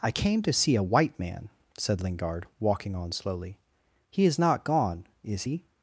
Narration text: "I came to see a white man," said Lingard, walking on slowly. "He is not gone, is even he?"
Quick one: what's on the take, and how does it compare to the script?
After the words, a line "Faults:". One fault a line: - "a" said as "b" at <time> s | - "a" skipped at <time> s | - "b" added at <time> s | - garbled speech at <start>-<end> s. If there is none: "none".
"I came to see a white man," said Lingard, walking on slowly. "He is not gone, is he?"
Faults:
- "even" skipped at 5.4 s